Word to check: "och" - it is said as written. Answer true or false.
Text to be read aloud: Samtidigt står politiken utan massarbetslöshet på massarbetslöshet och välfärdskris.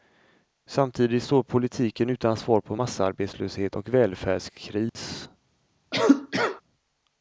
true